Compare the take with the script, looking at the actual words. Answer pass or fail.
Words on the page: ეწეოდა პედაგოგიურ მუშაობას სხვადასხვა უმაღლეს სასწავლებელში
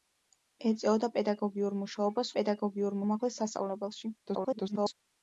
fail